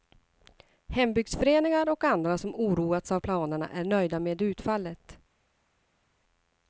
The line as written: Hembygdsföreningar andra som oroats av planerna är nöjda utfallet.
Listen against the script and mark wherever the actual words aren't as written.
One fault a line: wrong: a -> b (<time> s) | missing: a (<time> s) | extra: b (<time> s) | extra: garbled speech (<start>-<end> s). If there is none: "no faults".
extra: och (1.9 s)
extra: med (4.2 s)